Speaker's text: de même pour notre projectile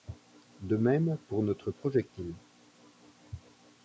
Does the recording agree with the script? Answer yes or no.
yes